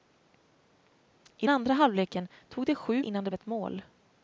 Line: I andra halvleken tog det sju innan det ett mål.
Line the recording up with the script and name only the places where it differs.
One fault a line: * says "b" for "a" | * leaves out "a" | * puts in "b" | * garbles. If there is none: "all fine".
all fine